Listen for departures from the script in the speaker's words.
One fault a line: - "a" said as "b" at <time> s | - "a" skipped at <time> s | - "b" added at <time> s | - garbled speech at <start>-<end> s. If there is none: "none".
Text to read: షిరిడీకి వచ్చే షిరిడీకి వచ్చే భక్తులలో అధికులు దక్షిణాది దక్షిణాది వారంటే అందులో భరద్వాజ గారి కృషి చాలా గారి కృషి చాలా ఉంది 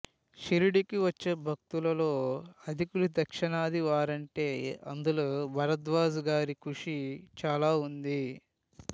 - "షిరిడీకి వచ్చే" skipped at 1.3 s
- "దక్షిణాది" skipped at 3.8 s
- "గారి కృషి చాలా" skipped at 7.7 s